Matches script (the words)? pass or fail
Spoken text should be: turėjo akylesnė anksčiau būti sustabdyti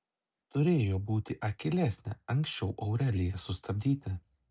fail